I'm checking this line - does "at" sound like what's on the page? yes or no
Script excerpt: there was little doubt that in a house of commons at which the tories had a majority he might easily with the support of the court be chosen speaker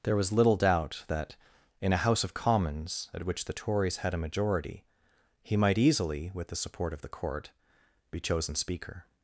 yes